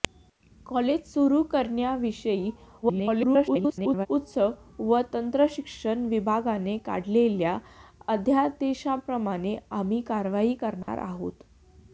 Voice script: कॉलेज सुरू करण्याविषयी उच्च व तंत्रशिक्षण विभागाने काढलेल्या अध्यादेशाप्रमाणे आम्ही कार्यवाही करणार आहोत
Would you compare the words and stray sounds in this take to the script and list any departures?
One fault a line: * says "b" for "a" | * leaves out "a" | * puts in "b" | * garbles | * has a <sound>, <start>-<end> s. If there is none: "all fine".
* garbles
* has a dropout, 10.8-10.9 s